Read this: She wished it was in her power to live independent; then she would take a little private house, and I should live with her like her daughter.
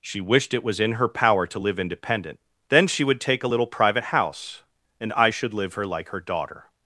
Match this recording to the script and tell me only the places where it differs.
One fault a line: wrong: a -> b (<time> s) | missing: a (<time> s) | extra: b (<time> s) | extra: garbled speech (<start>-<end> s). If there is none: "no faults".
missing: with (5.7 s)